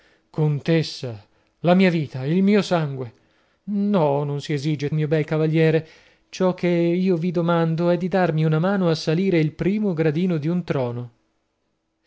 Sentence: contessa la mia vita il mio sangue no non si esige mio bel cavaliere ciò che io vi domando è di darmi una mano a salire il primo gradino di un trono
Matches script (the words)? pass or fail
pass